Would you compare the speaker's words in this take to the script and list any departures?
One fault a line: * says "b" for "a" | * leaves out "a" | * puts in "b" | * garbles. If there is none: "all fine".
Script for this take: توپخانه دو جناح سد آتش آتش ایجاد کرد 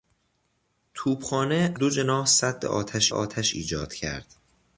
all fine